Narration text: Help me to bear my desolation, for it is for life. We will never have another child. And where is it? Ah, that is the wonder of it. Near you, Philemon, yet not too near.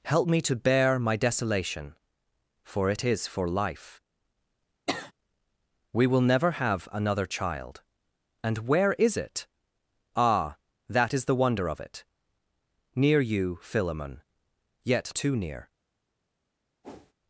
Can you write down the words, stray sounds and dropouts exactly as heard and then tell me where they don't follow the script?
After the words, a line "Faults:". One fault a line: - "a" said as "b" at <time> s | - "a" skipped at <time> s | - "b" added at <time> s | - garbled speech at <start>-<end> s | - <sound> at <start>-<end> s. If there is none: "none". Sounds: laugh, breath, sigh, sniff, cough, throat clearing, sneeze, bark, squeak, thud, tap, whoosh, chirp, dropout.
Help me to bear my desolation, for it is for life. We will never have another child. And where is it? Ah, that is the wonder of it. Near you, Philemon, yet too near.
Faults:
- sniff at 4.9-5.1 s
- "not" skipped at 15.1 s
- whoosh at 16.8-17.1 s